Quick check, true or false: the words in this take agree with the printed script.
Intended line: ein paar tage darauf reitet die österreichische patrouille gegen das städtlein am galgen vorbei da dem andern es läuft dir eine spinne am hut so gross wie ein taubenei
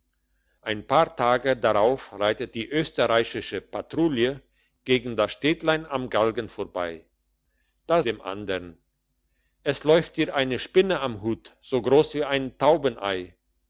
true